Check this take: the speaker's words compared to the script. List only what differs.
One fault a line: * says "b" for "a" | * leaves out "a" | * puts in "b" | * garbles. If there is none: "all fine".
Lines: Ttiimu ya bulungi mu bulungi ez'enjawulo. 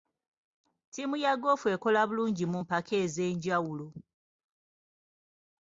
* puts in "goofu ekola"
* says "mpaka" for "bulungi"